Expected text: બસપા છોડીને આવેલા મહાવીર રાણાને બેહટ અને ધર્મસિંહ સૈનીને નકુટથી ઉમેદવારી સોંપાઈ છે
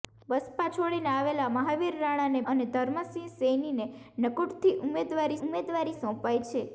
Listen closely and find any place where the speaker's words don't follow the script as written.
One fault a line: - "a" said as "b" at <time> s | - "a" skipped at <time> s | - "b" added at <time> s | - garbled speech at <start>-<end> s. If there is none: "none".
- "બેહટ" skipped at 2.4 s
- "ઉમેદવારી" added at 5.4 s